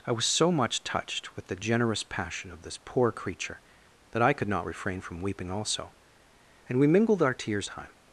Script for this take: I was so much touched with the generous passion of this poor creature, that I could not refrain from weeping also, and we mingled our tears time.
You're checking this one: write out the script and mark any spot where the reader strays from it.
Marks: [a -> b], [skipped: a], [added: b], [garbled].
I was so much touched with the generous passion of this poor creature, that I could not refrain from weeping also, and we mingled our tears time.